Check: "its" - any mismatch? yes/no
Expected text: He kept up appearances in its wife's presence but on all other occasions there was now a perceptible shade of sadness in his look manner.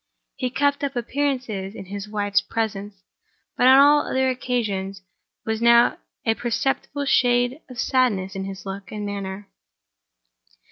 yes